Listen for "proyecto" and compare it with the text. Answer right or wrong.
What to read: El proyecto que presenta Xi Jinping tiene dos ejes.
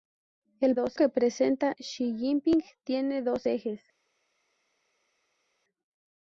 wrong